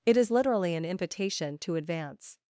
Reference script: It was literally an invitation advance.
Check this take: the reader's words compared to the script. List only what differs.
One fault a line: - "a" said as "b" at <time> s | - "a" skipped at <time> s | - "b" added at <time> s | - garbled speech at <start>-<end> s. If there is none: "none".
- "was" said as "is" at 0.2 s
- "to" added at 1.6 s